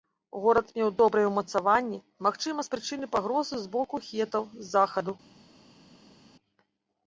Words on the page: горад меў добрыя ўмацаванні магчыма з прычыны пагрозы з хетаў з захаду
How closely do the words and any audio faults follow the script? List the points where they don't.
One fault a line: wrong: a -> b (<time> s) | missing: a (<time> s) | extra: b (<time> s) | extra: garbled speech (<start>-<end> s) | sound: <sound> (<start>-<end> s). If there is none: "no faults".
extra: боку (3.8 s)